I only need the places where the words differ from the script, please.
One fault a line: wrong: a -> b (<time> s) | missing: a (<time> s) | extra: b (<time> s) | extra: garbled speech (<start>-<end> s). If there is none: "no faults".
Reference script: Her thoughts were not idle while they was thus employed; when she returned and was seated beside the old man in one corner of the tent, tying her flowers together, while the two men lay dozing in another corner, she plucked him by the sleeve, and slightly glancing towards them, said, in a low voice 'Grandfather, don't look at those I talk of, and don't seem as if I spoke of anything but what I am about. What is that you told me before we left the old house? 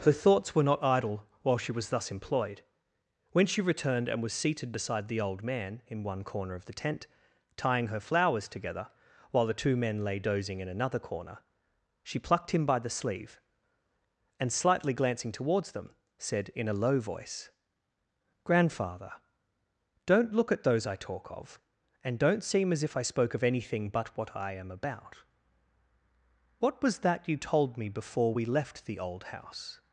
wrong: they -> she (1.6 s)
wrong: is -> was (26.8 s)